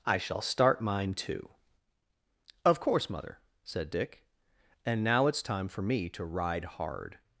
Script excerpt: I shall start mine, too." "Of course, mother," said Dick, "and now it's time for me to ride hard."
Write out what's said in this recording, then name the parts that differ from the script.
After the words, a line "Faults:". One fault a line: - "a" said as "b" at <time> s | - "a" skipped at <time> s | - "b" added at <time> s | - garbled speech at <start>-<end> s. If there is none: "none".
I shall start mine, too." "Of course, mother," said Dick, "and now it's time for me to ride hard."
Faults:
none